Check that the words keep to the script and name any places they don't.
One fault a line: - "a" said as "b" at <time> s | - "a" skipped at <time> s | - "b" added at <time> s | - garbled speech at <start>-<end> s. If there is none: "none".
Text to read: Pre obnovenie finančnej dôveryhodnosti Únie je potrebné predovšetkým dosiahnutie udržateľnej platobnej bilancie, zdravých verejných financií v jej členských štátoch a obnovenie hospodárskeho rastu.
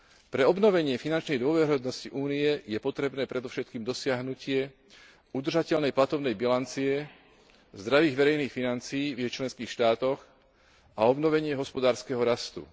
none